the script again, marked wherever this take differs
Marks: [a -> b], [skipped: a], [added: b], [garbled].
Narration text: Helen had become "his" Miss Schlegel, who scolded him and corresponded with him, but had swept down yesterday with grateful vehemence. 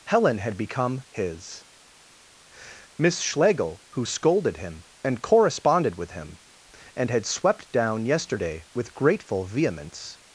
Helen had become "his" Miss Schlegel, who scolded him and corresponded with him, [but -> and] had swept down yesterday with grateful vehemence.